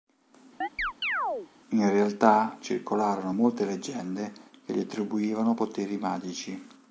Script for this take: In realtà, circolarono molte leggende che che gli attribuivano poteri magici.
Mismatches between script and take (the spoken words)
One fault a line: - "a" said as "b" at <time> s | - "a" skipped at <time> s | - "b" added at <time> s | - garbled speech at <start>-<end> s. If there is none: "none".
- "che" skipped at 4.7 s